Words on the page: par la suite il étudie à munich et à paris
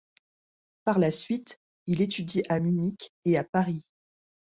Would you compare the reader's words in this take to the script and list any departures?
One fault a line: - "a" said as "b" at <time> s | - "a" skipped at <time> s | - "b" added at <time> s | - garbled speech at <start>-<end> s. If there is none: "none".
none